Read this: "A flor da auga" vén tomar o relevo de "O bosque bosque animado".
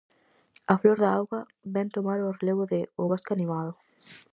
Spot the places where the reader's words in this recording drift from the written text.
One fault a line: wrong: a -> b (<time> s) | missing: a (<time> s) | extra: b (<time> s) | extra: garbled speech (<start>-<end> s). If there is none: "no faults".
missing: bosque (3.3 s)